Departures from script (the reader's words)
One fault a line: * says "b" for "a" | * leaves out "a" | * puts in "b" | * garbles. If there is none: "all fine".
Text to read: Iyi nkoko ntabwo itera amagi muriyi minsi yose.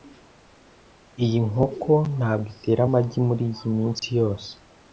all fine